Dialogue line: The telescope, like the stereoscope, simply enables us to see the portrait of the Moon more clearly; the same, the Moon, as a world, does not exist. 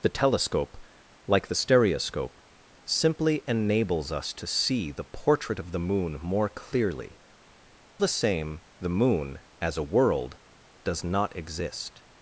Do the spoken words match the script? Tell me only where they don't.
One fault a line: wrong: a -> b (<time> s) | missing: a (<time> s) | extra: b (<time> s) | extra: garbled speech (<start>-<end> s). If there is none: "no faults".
no faults